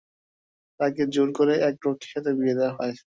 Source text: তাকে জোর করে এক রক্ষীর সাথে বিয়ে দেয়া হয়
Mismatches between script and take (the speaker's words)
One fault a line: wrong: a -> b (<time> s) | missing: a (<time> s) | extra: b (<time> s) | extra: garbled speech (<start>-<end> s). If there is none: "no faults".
no faults